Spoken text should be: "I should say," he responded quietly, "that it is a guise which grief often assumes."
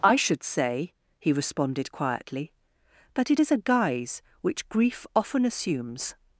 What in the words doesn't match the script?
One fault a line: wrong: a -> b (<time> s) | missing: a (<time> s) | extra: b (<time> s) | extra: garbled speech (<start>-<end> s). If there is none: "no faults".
no faults